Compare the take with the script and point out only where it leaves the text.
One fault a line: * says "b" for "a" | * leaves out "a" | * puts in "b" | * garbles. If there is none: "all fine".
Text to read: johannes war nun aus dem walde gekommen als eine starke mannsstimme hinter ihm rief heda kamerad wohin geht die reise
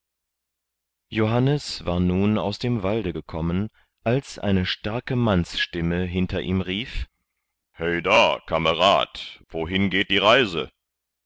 all fine